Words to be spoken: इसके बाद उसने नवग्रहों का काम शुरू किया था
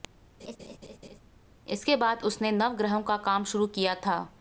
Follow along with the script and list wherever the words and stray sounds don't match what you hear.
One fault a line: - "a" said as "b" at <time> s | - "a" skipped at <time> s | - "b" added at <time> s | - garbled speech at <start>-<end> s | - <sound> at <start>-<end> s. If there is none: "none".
- laugh at 0.4-1.2 s